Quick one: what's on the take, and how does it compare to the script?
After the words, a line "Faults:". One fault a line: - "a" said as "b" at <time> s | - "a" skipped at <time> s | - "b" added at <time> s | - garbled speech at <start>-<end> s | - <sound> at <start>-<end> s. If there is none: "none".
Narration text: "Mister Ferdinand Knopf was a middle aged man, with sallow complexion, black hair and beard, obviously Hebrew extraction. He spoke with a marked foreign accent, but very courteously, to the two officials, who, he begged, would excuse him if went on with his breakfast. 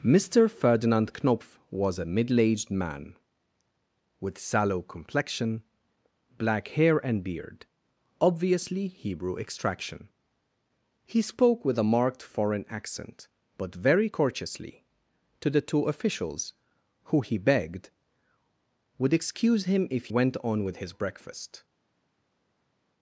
"Mister Ferdinand Knopf was a middle aged man, with sallow complexion, black hair and beard, obviously Hebrew extraction. He spoke with a marked foreign accent, but very courteously, to the two officials, who, he begged, would excuse him if went on with his breakfast.
Faults:
none